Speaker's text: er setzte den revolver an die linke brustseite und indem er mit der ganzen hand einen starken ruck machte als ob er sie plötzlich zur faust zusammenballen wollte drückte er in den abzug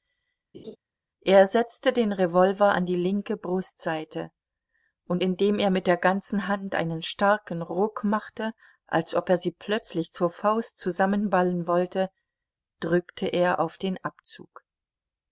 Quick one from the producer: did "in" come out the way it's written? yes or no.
no